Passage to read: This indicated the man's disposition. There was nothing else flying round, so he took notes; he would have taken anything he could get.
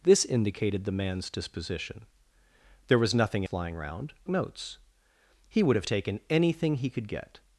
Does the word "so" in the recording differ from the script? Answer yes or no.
yes